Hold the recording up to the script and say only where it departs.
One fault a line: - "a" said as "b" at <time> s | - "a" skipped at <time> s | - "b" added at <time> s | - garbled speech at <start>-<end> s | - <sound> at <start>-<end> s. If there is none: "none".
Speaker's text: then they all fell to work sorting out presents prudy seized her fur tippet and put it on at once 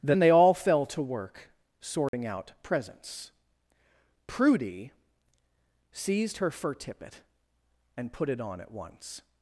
- dropout at 2.1-2.1 s